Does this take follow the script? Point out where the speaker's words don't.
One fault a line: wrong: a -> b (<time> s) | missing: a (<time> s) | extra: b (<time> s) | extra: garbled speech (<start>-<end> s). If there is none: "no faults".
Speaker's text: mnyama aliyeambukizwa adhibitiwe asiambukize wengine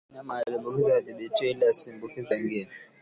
extra: ili (1.5 s)